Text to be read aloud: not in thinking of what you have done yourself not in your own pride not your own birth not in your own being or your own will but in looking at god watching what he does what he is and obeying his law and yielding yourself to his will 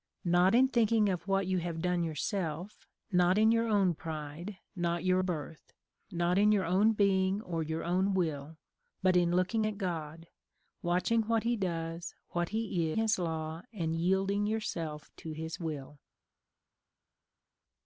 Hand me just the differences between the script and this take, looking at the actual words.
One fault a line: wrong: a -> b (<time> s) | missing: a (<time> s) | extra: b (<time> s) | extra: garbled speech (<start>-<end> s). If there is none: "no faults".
missing: own (5.2 s)
missing: is and obeying (12.9 s)